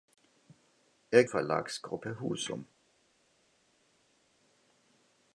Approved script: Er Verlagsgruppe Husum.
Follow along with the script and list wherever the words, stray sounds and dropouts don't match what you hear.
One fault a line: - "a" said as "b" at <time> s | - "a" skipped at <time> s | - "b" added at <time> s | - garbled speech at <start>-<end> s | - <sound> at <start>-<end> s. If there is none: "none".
none